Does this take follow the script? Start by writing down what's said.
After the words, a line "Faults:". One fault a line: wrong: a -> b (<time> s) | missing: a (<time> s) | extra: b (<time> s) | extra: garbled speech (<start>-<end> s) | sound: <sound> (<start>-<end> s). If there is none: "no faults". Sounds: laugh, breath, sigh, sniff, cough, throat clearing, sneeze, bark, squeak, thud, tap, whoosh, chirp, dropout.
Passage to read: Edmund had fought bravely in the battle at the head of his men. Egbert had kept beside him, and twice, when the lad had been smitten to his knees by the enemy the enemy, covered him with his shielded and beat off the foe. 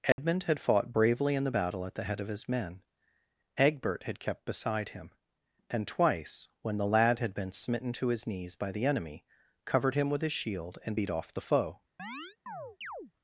Edmund had fought bravely in the battle at the head of his men. Egbert had kept beside him, and twice, when the lad had been smitten to his knees by the enemy, covered him with his shield and beat off the foe.
Faults:
sound: dropout (0.1-0.2 s)
missing: the enemy (9.2 s)
wrong: shielded -> shield (10.3 s)
sound: chirp (12.0-13.1 s)